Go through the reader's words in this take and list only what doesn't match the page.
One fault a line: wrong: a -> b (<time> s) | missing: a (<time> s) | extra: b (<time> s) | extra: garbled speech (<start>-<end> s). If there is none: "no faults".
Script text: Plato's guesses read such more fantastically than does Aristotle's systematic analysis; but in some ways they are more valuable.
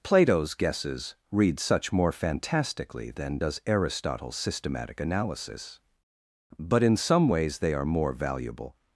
no faults